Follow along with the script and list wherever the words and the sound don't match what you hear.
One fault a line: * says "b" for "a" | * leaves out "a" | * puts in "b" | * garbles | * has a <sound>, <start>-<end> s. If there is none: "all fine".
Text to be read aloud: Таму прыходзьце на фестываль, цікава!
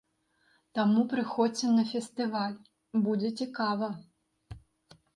* puts in "будзе"